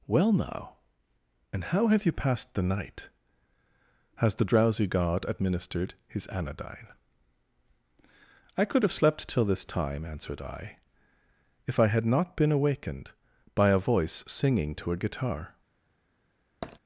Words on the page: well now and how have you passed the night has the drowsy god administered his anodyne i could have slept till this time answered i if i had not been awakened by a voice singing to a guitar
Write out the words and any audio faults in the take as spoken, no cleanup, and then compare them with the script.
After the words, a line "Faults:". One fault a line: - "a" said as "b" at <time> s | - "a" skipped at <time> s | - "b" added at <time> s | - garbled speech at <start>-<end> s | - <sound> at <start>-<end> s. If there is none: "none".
well now and how have you passed the night has the drowsy god administered his anodyne i could have slept till this time answered i if i had not been awakened by a voice singing to a guitar
Faults:
- tap at 16.6-16.8 s